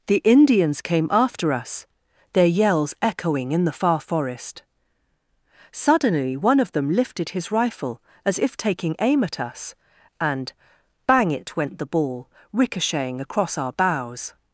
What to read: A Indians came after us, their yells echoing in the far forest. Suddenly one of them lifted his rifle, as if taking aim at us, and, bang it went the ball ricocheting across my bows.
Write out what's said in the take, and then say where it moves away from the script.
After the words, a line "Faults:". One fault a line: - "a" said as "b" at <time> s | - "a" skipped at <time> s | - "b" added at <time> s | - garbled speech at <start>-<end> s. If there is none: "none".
The Indians came after us, their yells echoing in the far forest. Suddenly one of them lifted his rifle, as if taking aim at us, and, bang it went the ball ricocheting across our bows.
Faults:
- "A" said as "The" at 0.1 s
- "my" said as "our" at 13.6 s